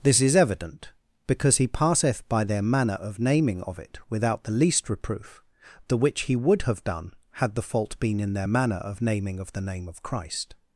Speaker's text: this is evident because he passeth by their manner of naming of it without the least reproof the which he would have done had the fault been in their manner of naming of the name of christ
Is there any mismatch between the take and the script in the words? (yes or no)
no